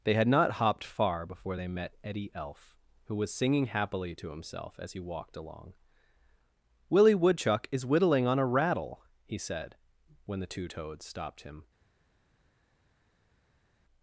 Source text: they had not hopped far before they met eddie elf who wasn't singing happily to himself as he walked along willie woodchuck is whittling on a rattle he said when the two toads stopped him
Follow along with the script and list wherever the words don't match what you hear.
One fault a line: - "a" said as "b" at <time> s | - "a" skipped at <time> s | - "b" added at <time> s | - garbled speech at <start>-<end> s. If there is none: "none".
- "wasn't" said as "was" at 3.2 s